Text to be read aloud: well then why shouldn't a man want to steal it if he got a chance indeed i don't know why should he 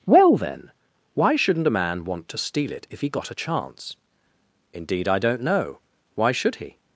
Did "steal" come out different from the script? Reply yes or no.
no